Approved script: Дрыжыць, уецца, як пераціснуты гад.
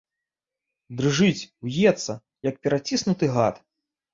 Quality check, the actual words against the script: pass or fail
pass